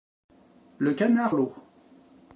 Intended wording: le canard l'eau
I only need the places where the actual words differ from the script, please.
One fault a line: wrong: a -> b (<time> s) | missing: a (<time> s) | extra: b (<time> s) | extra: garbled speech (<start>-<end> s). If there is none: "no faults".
no faults